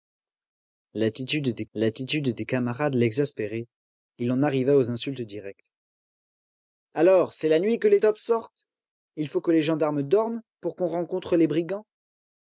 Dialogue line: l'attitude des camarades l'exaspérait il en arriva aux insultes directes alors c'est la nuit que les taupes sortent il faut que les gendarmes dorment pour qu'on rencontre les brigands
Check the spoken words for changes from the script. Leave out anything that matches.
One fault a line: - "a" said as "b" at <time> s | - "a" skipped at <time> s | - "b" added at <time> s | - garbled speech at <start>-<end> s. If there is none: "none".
- "l'attitude des" added at 1.8 s